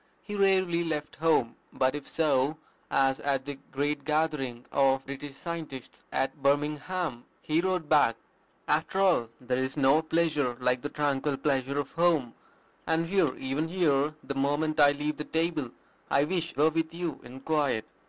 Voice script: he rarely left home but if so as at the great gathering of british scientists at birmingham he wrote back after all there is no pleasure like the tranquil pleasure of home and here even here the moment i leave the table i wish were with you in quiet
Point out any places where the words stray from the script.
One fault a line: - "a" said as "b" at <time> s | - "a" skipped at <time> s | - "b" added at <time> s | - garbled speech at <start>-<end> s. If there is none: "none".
none